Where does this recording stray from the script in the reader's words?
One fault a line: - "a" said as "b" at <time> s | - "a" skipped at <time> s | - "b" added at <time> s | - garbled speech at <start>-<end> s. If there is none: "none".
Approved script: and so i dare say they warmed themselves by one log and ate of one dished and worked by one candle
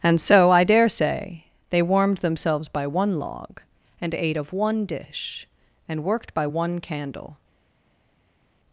- "dished" said as "dish" at 4.8 s